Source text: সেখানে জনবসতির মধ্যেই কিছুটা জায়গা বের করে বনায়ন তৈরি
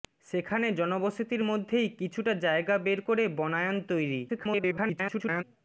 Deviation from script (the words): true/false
true